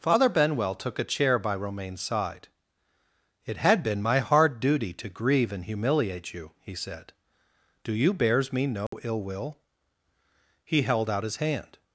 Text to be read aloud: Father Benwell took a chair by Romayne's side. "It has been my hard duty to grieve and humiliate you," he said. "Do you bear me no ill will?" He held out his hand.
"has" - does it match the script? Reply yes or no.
no